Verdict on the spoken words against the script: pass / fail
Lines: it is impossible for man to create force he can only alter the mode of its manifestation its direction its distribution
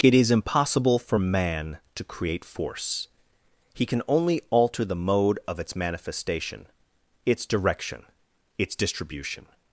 pass